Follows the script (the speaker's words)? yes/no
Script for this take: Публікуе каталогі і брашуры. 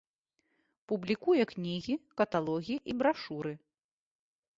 no